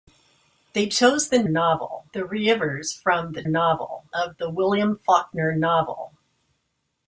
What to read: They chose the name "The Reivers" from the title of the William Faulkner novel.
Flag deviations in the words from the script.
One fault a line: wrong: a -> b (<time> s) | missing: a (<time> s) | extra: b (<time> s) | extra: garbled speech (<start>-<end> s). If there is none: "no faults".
wrong: name -> novel (1.5 s)
wrong: title -> novel (3.5 s)